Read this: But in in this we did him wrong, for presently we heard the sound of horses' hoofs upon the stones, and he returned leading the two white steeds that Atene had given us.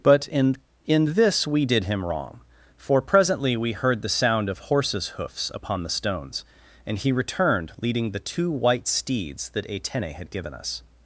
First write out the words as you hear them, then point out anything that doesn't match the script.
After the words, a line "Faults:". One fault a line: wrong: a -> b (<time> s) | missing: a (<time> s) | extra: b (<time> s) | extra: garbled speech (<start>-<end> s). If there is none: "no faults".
But in in this we did him wrong, for presently we heard the sound of horses' hoofs upon the stones, and he returned leading the two white steeds that Atene had given us.
Faults:
no faults